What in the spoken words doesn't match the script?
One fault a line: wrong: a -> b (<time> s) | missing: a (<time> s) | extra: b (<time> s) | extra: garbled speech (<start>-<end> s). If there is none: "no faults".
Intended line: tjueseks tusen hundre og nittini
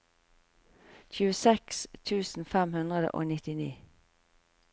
extra: fem (2.5 s)